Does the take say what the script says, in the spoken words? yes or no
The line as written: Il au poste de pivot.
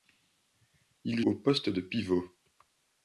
yes